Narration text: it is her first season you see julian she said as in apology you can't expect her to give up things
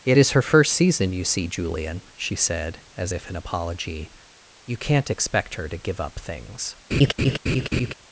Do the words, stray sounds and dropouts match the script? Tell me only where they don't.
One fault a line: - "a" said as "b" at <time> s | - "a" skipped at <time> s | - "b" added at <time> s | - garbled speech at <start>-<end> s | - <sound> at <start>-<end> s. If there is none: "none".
- "if" added at 3.1 s
- laugh at 6.9-7.9 s